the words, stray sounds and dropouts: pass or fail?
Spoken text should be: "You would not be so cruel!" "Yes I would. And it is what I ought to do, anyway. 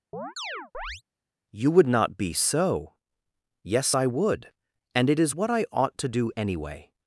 fail